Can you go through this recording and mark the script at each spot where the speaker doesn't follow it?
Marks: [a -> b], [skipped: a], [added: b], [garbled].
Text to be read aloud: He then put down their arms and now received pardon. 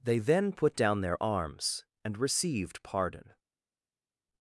[He -> They] then put down their arms and [skipped: now] received pardon.